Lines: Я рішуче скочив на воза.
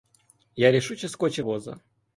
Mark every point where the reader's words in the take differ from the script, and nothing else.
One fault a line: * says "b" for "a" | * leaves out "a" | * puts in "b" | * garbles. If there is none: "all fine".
* leaves out "на"